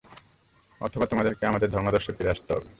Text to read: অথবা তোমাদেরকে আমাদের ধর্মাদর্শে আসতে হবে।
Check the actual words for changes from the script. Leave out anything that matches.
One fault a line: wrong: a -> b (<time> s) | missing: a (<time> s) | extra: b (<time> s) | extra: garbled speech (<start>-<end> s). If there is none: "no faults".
extra: ফিরে (2.1 s)